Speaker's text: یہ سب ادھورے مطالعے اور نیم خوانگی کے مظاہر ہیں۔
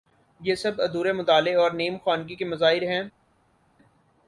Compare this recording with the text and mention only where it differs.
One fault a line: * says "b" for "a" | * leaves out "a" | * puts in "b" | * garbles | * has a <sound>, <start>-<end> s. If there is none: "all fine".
all fine